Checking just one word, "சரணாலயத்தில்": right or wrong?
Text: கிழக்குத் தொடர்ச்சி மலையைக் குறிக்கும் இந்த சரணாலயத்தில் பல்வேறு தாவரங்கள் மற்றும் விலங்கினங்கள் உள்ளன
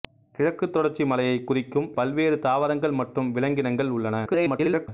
wrong